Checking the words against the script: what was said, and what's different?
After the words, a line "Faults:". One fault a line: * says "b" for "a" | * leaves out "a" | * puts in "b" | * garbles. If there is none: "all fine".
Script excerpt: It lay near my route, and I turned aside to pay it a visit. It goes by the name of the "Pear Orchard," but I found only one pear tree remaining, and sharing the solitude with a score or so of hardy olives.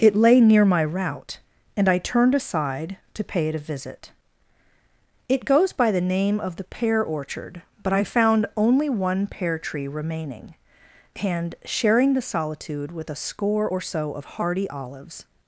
It lay near my route, and I turned aside to pay it a visit. It goes by the name of the "Pear Orchard," but I found only one pear tree remaining, and sharing the solitude with a score or so of hardy olives.
Faults:
all fine